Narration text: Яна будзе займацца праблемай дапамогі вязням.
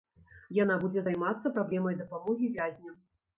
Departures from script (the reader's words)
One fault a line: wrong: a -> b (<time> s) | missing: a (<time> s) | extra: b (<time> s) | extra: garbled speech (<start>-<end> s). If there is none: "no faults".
no faults